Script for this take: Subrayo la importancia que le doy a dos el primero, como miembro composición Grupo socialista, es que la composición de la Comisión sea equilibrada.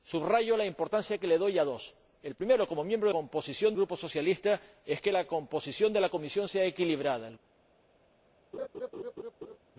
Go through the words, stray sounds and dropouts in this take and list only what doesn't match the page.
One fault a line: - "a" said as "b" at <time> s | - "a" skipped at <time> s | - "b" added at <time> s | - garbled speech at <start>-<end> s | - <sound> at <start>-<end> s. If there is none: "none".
- laugh at 8.5-9.6 s